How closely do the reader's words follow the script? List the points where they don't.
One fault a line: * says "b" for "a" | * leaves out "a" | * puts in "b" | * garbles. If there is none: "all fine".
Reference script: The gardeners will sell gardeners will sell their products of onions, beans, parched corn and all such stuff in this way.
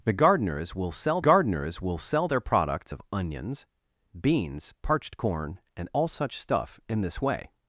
all fine